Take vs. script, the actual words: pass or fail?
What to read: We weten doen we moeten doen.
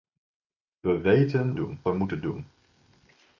pass